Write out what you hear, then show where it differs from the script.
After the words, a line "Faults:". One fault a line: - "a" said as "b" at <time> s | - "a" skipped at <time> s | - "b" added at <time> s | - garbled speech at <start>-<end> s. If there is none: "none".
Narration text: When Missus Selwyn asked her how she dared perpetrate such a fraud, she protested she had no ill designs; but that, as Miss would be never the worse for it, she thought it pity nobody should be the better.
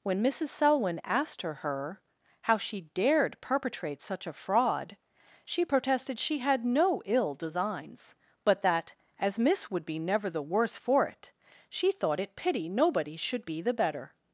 When Missus Selwyn asked her her how she dared perpetrate such a fraud, she protested she had no ill designs; but that, as Miss would be never the worse for it, she thought it pity nobody should be the better.
Faults:
- "her" added at 1.6 s